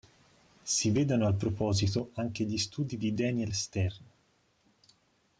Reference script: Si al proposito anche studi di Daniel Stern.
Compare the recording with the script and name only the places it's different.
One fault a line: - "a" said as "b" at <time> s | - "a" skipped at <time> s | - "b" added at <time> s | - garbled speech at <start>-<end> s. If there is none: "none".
- "vedano" added at 0.9 s
- "gli" added at 2.5 s